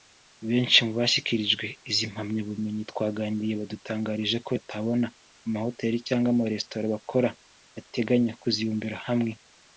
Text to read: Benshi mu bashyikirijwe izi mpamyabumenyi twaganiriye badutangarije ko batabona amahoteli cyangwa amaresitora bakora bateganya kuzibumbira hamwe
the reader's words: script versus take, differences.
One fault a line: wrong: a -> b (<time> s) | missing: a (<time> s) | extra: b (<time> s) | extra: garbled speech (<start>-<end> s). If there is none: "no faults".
no faults